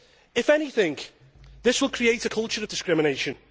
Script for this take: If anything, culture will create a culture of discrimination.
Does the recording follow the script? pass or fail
fail